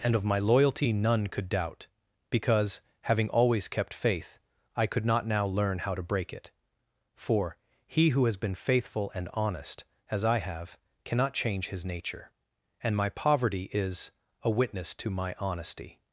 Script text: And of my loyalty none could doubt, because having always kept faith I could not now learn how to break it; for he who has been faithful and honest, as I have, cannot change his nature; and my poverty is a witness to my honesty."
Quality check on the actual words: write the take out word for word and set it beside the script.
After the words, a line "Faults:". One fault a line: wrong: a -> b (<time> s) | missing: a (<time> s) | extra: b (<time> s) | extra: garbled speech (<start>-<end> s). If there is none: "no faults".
And of my loyalty none could doubt, because having always kept faith I could not now learn how to break it; for he who has been faithful and honest, as I have, cannot change his nature; and my poverty is a witness to my honesty."
Faults:
no faults